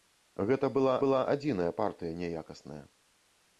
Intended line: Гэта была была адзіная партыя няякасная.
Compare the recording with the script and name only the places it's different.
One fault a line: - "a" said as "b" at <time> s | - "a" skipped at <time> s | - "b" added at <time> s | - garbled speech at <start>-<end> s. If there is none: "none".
none